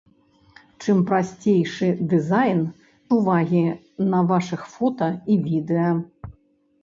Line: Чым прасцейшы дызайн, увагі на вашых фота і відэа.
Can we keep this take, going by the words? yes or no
yes